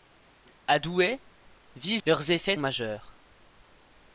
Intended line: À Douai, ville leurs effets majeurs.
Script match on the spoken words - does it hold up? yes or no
yes